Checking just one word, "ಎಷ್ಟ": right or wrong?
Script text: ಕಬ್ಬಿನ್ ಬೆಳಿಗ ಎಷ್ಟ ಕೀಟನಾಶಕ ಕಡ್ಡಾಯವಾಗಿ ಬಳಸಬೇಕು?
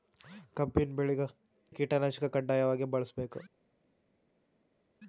wrong